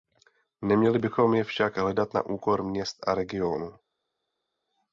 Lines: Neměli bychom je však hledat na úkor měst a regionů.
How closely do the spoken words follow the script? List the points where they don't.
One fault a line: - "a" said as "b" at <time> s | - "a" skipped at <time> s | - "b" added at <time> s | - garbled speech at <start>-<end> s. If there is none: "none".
none